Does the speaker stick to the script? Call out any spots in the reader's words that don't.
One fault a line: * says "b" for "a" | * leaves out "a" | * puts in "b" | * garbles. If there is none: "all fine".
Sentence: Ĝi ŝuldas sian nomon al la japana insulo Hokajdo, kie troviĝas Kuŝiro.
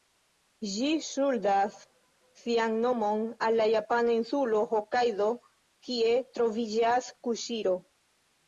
all fine